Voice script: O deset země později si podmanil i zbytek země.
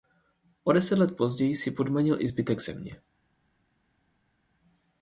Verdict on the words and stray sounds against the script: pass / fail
fail